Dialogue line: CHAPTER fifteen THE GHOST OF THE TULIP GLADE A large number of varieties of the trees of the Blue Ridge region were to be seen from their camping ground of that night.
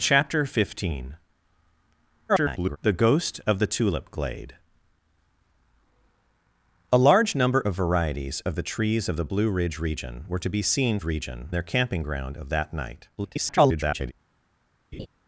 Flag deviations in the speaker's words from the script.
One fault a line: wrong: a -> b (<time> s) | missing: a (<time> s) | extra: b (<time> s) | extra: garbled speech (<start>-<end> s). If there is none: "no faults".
extra: garbled speech (2.3-2.8 s)
wrong: from -> region (11.0 s)
extra: garbled speech (13.2-14.1 s)